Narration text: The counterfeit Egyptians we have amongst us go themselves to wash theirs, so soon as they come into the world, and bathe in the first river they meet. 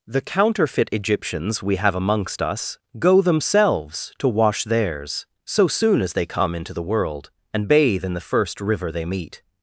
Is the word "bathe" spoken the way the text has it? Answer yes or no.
yes